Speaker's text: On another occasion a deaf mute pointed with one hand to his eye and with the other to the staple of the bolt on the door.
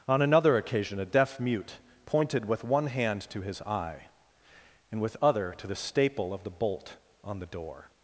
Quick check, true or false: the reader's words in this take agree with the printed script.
false